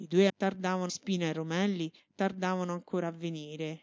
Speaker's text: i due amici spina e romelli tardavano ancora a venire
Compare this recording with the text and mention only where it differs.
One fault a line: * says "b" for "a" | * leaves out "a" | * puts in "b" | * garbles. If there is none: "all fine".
* says "tardavano" for "amici"